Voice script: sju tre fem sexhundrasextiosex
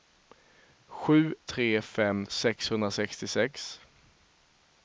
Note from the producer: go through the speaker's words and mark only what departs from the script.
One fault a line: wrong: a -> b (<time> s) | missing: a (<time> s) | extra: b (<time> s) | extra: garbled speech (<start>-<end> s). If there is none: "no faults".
no faults